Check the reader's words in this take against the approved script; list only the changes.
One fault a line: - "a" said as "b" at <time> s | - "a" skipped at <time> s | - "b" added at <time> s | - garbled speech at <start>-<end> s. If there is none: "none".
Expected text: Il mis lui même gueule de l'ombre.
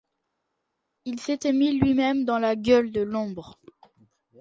- "s'était" added at 1.2 s
- "dans la" added at 2.2 s